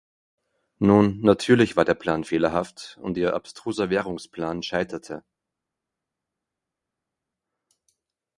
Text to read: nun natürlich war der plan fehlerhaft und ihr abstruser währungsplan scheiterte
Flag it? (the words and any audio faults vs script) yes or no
no